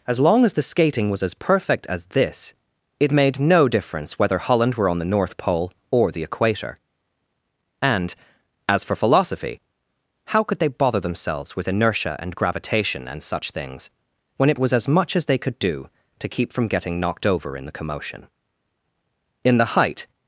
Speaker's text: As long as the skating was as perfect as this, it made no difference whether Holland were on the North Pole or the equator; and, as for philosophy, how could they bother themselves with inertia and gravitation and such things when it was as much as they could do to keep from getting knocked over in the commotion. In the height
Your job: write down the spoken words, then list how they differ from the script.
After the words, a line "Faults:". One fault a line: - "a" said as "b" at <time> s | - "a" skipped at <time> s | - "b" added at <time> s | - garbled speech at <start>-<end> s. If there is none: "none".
As long as the skating was as perfect as this, it made no difference whether Holland were on the North Pole or the equator; and, as for philosophy, how could they bother themselves with inertia and gravitation and such things when it was as much as they could do to keep from getting knocked over in the commotion. In the height
Faults:
none